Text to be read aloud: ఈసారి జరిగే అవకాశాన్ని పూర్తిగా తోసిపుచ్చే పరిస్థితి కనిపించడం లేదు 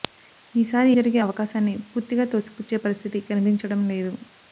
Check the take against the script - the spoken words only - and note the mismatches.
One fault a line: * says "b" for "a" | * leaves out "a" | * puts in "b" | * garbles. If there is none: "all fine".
all fine